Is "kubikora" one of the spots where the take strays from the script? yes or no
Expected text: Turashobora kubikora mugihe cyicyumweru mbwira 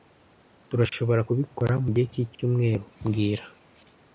no